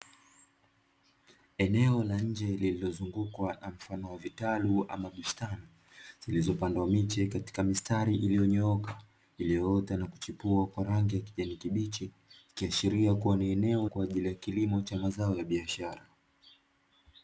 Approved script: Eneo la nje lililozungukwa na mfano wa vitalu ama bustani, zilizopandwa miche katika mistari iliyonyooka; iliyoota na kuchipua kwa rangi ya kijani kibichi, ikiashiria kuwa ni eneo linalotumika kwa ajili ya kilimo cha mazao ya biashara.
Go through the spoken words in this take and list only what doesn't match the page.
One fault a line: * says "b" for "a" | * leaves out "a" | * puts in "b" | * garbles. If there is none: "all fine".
* leaves out "linalotumika"